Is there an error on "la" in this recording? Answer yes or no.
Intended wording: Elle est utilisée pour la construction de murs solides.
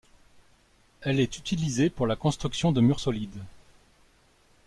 no